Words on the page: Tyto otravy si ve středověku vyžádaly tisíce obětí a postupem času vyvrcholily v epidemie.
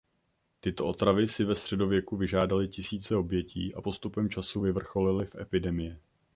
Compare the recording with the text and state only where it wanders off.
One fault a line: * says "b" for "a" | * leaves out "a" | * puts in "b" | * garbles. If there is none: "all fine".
all fine